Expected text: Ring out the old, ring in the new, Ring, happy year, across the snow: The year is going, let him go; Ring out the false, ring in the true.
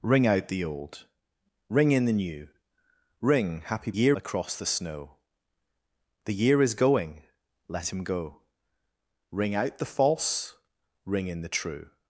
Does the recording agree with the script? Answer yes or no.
yes